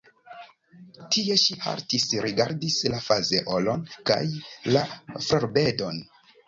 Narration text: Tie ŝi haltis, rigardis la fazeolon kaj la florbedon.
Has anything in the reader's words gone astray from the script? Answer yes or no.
no